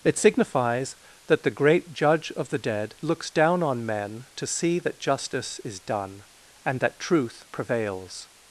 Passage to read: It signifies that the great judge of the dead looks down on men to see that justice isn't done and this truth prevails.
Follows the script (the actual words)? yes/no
no